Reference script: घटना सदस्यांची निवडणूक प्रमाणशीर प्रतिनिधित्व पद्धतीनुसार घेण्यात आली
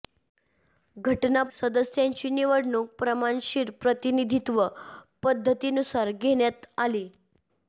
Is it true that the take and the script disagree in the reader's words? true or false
false